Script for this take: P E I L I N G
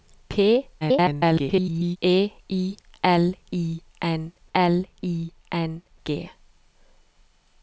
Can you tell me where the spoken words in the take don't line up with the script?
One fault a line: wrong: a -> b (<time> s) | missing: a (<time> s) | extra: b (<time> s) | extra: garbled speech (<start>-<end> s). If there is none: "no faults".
extra: garbled speech (0.8-2.0 s)
extra: L I N (4.5 s)